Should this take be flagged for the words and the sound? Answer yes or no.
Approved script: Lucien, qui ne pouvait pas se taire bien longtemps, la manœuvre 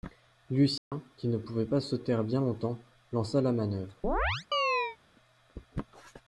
yes